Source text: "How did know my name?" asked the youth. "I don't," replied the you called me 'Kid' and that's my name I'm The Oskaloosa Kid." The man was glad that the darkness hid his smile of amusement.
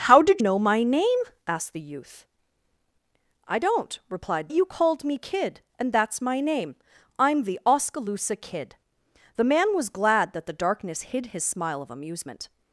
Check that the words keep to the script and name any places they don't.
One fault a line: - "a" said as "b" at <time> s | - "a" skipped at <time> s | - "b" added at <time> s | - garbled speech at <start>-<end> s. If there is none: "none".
none